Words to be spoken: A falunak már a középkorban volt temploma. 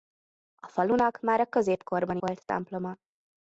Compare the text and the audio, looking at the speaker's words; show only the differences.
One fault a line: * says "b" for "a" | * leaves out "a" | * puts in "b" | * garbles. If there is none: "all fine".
all fine